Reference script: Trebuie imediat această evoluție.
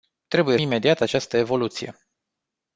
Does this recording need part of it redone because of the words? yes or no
no